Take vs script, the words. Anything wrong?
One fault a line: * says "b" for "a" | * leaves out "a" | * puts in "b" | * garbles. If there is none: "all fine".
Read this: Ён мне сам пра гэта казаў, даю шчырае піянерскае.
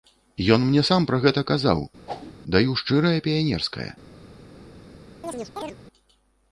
all fine